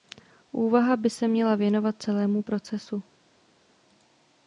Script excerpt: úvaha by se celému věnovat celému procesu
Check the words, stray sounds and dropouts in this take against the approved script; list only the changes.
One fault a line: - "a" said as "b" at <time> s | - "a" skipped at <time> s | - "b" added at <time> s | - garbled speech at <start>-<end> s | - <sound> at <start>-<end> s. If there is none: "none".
- "celému" said as "měla" at 1.3 s